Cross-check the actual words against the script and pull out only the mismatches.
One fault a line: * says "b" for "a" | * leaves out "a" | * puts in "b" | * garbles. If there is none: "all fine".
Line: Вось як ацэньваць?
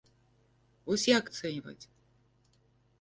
all fine